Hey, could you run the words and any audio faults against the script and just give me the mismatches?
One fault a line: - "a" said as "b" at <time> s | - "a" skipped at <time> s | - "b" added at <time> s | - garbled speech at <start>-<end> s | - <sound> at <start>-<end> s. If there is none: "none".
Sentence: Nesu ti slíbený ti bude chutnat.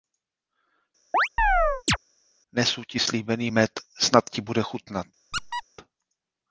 - chirp at 1.1-2.0 s
- "med Snad" added at 3.5 s
- squeak at 5.3-5.6 s